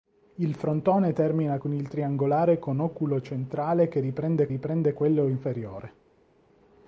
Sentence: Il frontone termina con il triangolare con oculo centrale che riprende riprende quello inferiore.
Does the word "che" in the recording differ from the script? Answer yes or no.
no